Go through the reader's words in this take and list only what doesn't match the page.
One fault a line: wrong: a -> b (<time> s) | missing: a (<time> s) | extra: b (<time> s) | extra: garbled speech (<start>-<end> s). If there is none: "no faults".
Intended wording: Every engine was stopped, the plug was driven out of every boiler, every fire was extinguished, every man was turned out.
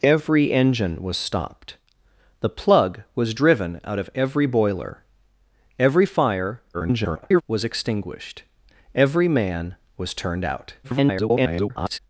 extra: garbled speech (6.7-7.4 s)
extra: garbled speech (10.8-12.0 s)